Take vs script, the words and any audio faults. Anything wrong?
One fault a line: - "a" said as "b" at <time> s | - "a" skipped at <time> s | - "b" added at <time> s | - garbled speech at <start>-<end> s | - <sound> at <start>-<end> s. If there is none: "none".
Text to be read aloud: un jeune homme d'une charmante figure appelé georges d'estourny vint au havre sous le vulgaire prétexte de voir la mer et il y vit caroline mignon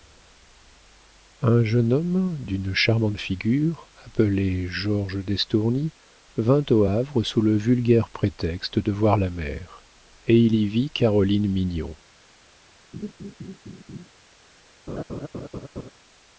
- laugh at 12.9-14.1 s
- laugh at 14.9-15.9 s